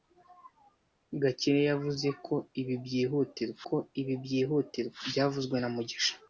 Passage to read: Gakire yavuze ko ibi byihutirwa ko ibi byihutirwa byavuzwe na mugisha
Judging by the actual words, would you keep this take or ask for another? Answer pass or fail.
pass